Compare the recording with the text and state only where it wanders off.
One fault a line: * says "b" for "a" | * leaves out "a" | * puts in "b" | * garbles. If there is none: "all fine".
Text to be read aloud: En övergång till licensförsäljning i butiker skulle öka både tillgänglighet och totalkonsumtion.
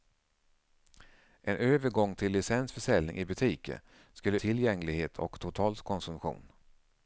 * leaves out "öka både"